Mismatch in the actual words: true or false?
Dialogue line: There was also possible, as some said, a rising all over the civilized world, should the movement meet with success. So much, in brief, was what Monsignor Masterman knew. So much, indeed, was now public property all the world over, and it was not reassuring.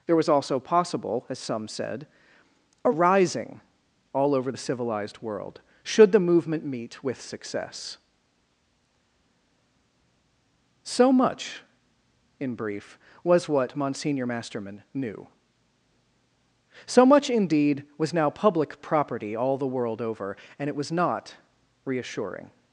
false